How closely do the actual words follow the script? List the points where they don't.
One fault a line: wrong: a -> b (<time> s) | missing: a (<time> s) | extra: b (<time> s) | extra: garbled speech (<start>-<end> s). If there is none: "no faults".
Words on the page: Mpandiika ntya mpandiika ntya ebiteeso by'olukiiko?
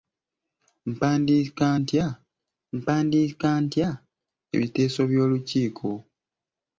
no faults